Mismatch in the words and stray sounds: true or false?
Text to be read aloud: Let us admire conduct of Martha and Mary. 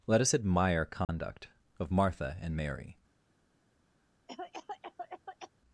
true